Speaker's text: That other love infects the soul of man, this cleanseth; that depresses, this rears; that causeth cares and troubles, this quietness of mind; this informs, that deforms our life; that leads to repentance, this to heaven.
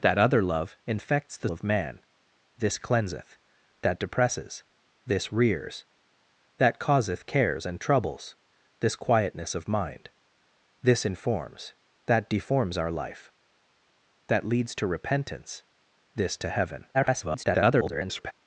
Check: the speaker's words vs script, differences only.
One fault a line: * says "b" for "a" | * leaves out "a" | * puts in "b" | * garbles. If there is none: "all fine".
* leaves out "soul"
* garbles